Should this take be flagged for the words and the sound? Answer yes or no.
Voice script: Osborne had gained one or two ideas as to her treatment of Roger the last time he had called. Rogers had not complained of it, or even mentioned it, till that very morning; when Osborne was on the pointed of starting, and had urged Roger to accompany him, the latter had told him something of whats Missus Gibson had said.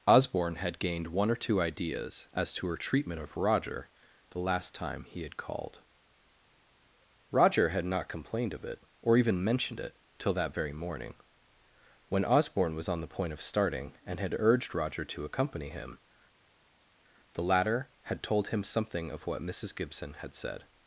yes